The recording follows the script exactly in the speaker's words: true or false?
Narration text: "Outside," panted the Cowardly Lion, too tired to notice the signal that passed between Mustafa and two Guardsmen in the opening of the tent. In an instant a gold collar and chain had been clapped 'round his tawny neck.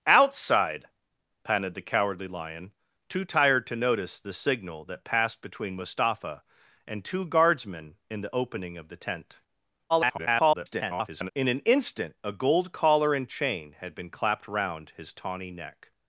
false